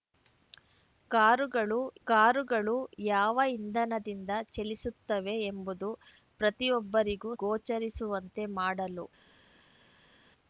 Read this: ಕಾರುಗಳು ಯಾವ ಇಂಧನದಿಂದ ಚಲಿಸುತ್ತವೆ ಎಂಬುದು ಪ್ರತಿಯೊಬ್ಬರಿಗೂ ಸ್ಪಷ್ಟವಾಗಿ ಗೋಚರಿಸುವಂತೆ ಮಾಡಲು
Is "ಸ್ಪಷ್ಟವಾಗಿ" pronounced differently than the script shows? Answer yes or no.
yes